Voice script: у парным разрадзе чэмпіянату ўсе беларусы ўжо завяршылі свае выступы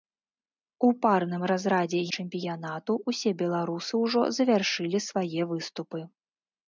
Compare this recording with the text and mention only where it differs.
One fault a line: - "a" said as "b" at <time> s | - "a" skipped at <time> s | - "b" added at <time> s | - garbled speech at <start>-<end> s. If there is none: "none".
none